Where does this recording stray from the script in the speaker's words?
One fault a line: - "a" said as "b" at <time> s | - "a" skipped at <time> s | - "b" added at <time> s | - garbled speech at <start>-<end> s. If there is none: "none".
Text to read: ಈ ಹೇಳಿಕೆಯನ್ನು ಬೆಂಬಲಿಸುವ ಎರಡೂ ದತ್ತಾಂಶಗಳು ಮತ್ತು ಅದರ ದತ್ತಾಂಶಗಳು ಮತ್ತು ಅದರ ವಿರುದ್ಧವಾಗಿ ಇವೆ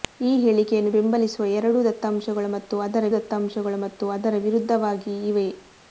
none